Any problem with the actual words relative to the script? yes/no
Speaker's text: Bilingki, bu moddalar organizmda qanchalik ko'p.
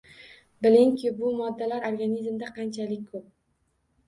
no